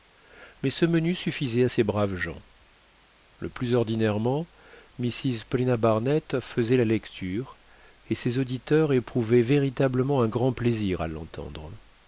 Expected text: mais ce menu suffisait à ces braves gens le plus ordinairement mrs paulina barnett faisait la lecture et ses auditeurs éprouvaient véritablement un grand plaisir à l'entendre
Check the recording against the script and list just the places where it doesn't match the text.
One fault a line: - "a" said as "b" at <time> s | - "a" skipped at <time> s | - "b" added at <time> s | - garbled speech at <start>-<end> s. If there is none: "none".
none